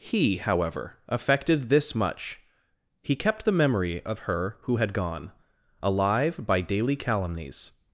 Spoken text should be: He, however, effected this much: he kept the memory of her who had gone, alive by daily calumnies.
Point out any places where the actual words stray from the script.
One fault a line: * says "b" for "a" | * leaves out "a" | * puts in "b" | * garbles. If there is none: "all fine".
all fine